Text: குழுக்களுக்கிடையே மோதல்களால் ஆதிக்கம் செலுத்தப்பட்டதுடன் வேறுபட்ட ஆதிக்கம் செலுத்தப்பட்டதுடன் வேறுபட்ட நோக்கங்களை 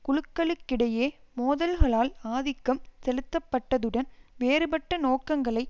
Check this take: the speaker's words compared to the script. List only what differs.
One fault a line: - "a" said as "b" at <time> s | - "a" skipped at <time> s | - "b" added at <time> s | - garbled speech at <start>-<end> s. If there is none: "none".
- "ஆதிக்கம் செலுத்தப்பட்டதுடன் வேறுபட்ட" skipped at 5.0 s